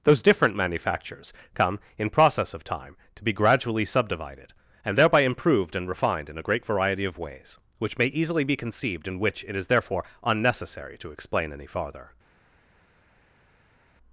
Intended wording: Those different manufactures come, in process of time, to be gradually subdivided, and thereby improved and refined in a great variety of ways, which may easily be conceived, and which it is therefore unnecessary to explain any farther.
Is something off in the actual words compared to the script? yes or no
no